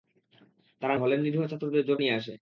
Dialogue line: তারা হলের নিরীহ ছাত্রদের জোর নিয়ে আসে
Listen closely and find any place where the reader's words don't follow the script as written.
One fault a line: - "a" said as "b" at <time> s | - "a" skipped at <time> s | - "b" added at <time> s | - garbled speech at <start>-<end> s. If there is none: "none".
none